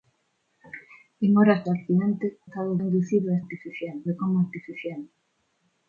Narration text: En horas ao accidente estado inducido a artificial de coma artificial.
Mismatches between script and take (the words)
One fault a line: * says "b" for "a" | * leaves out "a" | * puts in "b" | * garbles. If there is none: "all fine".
all fine